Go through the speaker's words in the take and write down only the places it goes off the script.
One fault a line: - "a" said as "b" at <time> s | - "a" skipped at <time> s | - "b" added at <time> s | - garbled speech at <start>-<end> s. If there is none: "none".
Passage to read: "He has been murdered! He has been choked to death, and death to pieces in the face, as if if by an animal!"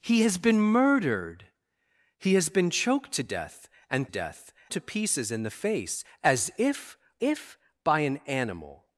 none